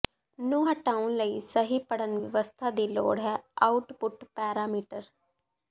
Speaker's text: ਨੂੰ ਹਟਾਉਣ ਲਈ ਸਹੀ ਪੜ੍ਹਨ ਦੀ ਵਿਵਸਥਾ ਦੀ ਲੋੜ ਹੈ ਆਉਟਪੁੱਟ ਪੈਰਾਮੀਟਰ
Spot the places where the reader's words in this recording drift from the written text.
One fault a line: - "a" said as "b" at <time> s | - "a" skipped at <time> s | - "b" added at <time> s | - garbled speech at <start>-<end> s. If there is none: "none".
- "ਦੀ" skipped at 2.2 s